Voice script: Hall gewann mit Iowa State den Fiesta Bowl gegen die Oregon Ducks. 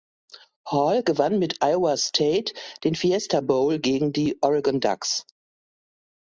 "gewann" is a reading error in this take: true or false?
false